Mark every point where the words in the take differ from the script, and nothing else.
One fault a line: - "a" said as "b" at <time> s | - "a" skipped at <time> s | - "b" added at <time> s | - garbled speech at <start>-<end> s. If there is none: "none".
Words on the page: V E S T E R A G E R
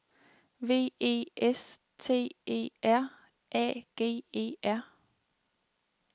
none